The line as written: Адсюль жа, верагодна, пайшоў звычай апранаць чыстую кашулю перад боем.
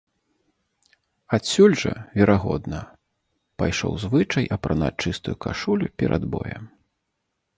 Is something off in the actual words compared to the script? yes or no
no